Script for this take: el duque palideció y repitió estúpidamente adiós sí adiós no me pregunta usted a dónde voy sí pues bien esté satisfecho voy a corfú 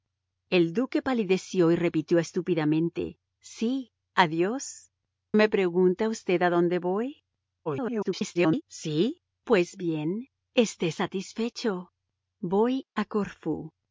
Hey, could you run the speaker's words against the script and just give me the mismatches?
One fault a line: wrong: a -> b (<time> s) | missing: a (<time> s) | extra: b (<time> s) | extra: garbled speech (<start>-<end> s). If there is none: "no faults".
missing: adiós (3.2 s)
missing: no (4.9 s)
extra: garbled speech (7.7-8.6 s)